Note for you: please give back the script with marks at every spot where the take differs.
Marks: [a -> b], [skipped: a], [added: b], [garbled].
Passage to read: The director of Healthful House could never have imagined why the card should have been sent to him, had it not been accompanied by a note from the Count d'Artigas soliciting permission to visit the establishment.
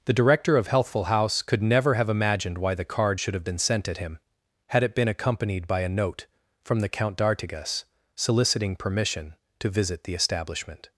The director of Healthful House could never have imagined why the card should have been sent [to -> at] him, had it [skipped: not] been accompanied by a note from the Count d'Artigas soliciting permission to visit the establishment.